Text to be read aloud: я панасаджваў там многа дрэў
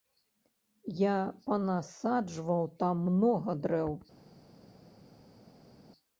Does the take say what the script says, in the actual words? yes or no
yes